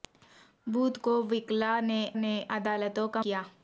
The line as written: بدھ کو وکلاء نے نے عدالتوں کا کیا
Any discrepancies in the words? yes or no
no